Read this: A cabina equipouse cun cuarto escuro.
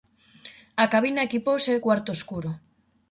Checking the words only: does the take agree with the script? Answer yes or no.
no